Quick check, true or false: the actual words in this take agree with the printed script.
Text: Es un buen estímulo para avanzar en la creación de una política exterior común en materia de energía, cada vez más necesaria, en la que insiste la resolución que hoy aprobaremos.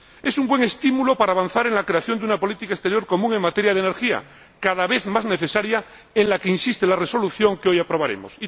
true